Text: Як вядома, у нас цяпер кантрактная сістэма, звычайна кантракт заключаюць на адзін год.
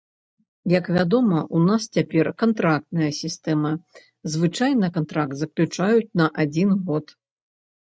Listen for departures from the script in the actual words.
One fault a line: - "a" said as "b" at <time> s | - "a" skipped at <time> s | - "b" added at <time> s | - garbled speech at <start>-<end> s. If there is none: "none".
none